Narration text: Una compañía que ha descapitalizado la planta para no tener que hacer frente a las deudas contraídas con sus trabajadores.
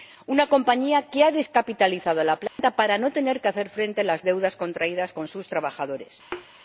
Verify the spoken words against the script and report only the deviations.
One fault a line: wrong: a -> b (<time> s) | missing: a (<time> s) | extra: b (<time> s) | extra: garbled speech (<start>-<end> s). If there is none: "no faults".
no faults